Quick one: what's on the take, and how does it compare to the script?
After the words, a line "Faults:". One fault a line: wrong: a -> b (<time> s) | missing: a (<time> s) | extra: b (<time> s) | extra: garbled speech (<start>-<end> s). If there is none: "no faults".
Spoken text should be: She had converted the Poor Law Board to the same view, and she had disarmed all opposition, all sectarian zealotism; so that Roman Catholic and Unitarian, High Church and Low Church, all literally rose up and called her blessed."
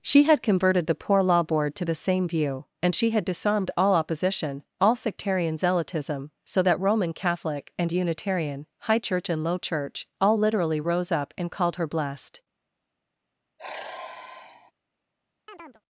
She had converted the Poor Law Board to the same view, and she had disarmed all opposition, all sectarian zealotism; so that Roman Catholic and Unitarian, High Church and Low Church, all literally rose up and called her blessed."
Faults:
no faults